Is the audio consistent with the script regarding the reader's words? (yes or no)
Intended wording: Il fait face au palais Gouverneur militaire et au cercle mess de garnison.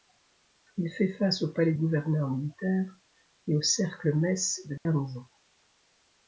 yes